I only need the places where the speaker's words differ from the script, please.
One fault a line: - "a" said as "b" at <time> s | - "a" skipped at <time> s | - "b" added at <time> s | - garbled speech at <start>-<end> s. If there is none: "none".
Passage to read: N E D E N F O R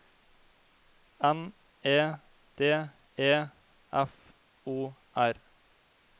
- "N" skipped at 3.3 s